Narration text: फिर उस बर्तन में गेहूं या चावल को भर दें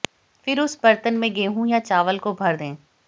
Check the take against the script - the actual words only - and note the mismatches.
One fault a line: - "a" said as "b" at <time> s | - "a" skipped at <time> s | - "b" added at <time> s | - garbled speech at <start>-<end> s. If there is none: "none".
none